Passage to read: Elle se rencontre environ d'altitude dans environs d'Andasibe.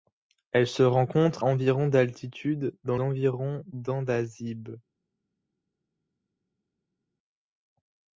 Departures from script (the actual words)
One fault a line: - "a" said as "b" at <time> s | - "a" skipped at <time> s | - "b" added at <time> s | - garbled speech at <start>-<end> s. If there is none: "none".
none